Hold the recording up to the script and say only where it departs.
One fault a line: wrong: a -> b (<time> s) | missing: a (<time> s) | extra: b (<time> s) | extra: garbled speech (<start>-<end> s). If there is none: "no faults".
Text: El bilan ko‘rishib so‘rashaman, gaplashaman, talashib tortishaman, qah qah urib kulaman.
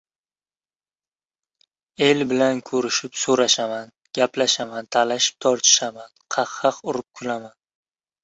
no faults